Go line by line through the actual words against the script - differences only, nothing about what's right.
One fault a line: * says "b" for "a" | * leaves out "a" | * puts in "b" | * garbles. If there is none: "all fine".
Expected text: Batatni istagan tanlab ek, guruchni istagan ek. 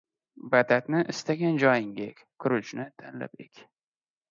* says "joyingga" for "tanlab"
* says "tanlab" for "istagan"